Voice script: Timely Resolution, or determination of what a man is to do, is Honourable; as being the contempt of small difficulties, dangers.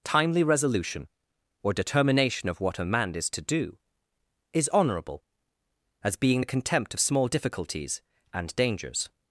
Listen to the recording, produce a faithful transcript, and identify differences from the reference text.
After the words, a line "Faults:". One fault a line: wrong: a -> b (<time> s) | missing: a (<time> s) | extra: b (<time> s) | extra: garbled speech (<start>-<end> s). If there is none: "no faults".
Timely Resolution, or determination of what a man is to do, is Honourable; as being the contempt of small difficulties, and dangers.
Faults:
extra: and (8.3 s)